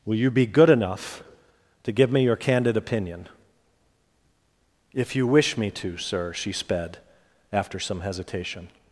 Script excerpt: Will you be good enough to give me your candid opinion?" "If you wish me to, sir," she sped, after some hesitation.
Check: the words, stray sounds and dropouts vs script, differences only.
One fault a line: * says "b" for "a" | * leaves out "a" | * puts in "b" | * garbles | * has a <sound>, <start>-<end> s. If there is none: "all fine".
all fine